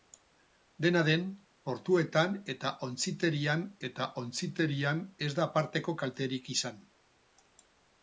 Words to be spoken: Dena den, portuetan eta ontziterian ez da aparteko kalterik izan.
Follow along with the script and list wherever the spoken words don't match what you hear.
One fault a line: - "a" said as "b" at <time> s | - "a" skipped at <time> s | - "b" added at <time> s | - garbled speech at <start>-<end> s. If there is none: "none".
- "eta ontziterian" added at 3.9 s